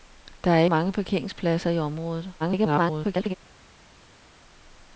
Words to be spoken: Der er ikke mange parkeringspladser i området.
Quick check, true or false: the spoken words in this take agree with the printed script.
false